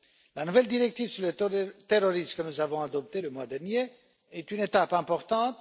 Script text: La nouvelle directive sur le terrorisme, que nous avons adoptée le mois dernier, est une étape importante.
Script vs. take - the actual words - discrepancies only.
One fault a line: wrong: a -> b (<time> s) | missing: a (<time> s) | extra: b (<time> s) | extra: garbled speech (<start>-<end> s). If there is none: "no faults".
no faults